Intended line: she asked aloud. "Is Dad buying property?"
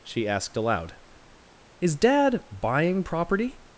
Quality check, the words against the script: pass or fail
pass